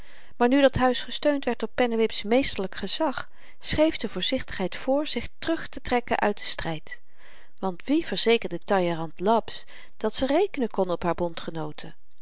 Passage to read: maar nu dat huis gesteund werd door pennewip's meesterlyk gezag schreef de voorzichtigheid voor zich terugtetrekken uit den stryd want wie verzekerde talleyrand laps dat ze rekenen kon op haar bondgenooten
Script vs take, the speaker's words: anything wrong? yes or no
no